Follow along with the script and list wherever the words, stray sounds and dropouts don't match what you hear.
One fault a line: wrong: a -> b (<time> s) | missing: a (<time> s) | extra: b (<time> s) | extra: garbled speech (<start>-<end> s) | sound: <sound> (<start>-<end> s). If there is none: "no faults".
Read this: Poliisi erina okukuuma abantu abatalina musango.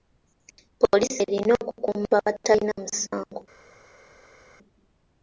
missing: abantu (2.1 s)